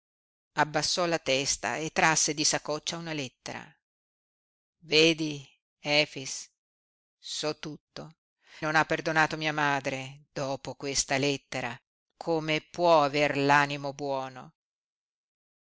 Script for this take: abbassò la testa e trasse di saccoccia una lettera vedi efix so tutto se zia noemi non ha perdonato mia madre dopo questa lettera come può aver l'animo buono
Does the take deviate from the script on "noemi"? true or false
true